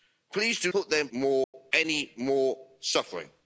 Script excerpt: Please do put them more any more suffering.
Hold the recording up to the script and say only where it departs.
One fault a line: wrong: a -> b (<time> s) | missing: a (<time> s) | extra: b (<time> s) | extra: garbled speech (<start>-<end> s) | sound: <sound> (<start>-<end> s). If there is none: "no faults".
sound: dropout (1.4-1.5 s)